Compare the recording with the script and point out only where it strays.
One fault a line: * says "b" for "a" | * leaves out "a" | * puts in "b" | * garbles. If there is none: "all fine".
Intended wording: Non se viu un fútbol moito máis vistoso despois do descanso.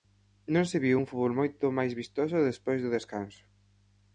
all fine